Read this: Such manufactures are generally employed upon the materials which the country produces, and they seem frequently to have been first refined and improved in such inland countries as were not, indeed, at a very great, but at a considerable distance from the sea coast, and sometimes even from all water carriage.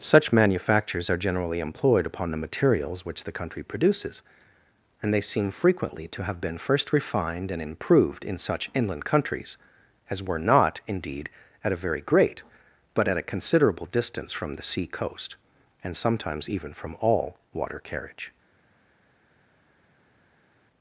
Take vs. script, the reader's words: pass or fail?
pass